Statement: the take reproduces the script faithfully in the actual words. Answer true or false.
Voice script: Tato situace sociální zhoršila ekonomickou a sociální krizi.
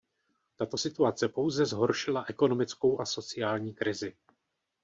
false